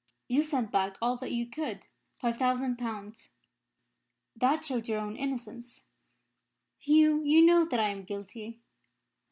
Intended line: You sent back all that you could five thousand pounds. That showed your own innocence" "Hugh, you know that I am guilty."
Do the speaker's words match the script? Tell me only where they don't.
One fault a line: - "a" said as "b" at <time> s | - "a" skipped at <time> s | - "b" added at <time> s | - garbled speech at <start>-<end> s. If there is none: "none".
none